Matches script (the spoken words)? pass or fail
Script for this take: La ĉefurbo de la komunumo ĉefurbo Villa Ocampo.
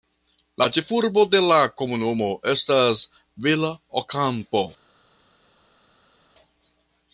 fail